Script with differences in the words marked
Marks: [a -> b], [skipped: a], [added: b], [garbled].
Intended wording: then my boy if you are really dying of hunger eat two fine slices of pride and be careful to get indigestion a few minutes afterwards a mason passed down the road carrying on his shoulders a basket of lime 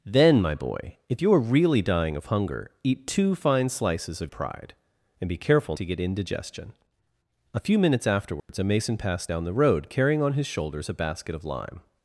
then my boy if you are really dying of hunger eat two fine slices of pride and be careful to get indigestion a few minutes afterwards a mason passed down the road carrying on his shoulders a basket of lime